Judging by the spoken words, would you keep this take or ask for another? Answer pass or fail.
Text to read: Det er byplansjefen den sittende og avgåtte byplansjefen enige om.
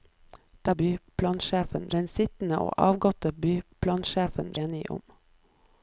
pass